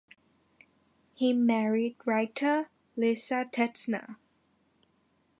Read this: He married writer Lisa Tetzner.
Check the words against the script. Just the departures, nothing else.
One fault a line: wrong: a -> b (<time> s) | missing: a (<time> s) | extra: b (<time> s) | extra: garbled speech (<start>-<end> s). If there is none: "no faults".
no faults